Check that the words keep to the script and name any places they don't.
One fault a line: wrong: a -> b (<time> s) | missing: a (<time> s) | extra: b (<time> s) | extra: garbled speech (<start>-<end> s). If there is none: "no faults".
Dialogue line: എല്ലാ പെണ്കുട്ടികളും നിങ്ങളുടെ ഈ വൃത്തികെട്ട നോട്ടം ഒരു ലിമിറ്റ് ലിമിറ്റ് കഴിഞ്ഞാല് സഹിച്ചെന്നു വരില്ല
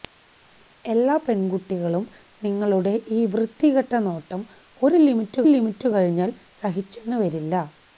no faults